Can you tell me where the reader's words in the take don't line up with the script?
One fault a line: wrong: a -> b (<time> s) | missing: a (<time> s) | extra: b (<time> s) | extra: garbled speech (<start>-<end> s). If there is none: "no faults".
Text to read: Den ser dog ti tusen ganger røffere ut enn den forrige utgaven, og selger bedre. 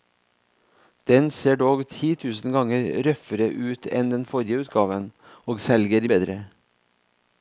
no faults